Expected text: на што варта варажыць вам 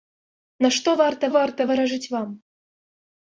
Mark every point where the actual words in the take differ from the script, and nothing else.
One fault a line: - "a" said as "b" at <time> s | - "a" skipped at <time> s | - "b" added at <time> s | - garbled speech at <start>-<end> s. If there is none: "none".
- "варта" added at 1.4 s